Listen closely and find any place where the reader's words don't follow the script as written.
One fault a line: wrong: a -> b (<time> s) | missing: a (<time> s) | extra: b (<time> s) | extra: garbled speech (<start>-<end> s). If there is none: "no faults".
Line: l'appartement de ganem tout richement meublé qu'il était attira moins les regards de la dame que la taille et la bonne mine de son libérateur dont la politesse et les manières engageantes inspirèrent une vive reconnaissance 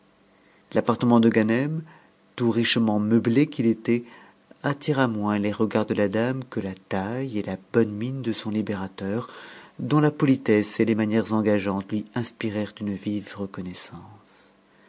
extra: lui (11.9 s)